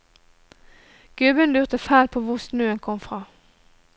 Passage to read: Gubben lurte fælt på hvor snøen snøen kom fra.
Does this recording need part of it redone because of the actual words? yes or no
yes